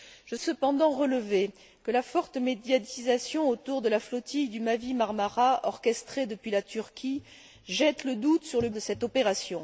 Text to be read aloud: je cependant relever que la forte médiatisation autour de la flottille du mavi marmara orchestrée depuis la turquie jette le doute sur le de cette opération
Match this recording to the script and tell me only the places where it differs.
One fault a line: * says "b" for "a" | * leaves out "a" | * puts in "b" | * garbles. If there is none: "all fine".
all fine